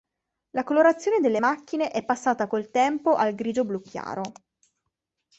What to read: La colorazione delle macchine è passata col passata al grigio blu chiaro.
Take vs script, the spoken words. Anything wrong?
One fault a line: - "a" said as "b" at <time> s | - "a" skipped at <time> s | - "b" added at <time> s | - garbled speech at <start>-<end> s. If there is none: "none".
- "passata" said as "tempo" at 2.7 s